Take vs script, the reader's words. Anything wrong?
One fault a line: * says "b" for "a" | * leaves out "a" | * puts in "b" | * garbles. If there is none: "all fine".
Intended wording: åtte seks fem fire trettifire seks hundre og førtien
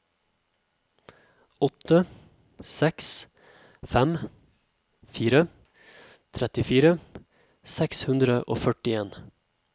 all fine